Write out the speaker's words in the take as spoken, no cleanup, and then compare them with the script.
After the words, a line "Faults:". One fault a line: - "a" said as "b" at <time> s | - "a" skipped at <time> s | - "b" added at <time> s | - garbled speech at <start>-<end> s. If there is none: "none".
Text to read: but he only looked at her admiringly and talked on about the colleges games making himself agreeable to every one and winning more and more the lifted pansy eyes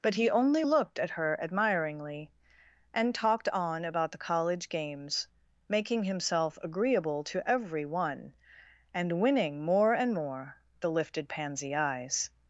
but he only looked at her admiringly and talked on about the college games making himself agreeable to every one and winning more and more the lifted pansy eyes
Faults:
- "colleges" said as "college" at 4.2 s